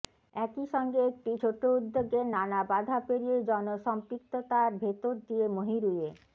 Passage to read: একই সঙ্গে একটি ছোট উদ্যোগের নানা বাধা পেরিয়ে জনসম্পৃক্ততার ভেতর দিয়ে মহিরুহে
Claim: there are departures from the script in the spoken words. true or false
false